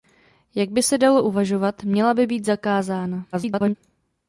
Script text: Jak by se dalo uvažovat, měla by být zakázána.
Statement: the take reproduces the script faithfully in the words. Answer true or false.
false